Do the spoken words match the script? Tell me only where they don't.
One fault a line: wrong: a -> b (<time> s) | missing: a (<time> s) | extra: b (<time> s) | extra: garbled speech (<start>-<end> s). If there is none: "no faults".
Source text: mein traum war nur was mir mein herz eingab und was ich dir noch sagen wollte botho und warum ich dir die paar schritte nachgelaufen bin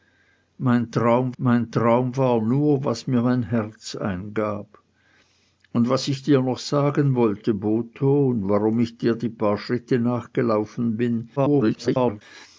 extra: mein traum (1.4 s)
extra: garbled speech (11.4-12.2 s)